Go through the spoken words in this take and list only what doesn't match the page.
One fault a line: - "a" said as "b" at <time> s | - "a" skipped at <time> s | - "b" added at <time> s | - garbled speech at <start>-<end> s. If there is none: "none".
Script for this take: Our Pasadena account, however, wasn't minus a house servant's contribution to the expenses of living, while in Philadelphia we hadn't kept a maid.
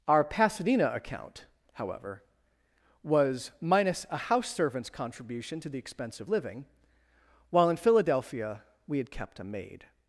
- "wasn't" said as "was" at 3.0 s
- "expenses" said as "expense" at 5.8 s
- "hadn't" said as "had" at 9.0 s